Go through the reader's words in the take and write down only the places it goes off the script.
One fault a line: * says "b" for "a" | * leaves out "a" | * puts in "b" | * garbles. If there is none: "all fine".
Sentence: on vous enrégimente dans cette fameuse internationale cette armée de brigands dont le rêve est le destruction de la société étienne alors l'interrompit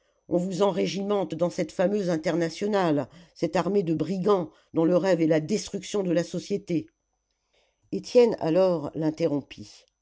* says "la" for "le"